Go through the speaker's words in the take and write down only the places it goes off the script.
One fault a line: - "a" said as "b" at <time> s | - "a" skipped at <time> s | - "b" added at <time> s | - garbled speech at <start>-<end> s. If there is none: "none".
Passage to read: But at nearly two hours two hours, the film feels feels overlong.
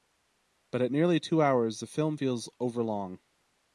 - "two hours" skipped at 1.8 s
- "feels" skipped at 2.5 s